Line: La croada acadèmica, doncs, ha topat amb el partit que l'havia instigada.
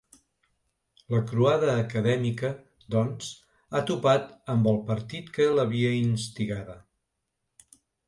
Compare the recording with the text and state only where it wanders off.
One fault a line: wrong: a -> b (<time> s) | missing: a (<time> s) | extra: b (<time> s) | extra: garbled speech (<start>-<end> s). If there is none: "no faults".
no faults